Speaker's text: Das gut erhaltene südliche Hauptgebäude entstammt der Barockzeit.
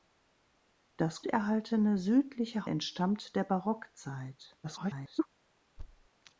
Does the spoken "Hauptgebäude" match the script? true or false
false